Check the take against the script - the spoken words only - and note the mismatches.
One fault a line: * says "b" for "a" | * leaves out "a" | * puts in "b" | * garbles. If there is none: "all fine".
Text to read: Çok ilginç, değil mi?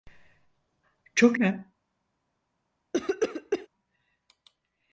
* leaves out "ilginç değil"